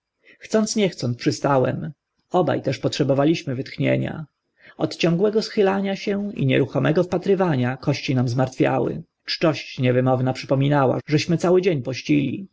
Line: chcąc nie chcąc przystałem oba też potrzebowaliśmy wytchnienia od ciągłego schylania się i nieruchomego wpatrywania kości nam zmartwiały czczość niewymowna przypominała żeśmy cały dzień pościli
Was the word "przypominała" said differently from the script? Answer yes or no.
no